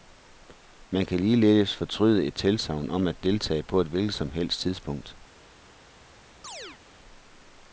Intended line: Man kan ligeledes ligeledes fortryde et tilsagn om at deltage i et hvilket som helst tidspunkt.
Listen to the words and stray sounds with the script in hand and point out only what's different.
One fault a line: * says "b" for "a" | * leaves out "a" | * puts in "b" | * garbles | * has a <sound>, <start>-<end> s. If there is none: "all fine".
* leaves out "ligeledes"
* says "på" for "i"
* has a chirp, 6.4-6.8 s